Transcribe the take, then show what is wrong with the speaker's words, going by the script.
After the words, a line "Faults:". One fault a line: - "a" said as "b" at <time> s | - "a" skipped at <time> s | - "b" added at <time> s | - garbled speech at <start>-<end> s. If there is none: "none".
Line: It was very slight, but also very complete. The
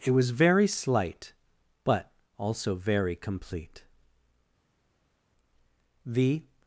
It was very slight, but also very complete. The
Faults:
none